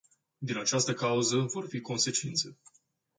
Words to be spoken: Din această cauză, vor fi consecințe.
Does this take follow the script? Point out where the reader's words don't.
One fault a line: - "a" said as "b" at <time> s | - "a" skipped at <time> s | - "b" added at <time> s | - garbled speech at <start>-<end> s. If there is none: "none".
none